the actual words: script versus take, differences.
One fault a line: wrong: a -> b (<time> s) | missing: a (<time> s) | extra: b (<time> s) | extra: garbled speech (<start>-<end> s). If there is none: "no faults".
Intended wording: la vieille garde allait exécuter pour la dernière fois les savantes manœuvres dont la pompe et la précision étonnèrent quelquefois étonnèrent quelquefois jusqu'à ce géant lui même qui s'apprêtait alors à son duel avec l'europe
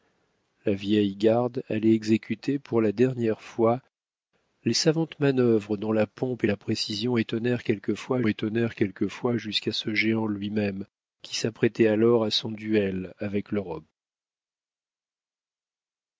no faults